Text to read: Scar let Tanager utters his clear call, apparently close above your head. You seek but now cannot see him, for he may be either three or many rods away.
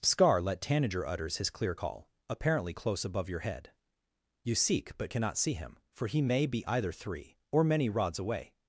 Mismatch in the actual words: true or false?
true